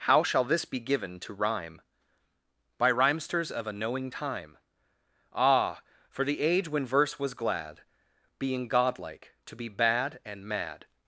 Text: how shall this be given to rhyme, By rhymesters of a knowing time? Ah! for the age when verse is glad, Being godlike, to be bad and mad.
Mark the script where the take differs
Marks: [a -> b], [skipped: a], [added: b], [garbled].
how shall this be given to rhyme, By rhymesters of a knowing time? Ah! for the age when verse [is -> was] glad, Being godlike, to be bad and mad.